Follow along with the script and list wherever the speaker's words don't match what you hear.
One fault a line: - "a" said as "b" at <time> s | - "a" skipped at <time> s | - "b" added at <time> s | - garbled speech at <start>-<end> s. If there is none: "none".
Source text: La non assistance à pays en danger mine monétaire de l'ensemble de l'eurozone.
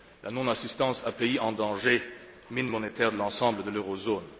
none